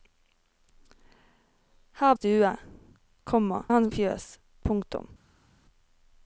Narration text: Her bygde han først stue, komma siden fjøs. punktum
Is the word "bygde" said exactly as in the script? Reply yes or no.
no